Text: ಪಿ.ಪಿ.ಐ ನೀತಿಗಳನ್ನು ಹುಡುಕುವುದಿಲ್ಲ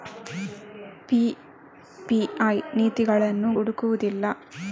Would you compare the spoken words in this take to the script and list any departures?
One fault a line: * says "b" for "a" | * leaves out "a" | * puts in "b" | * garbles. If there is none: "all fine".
all fine